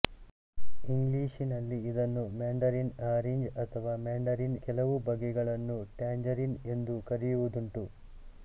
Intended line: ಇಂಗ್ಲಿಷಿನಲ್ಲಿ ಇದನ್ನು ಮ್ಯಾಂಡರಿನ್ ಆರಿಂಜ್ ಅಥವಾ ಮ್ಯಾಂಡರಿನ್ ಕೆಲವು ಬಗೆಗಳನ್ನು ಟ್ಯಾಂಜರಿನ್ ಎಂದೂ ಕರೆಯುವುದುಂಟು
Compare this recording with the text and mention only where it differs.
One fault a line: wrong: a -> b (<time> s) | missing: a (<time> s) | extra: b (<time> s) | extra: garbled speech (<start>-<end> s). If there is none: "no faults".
no faults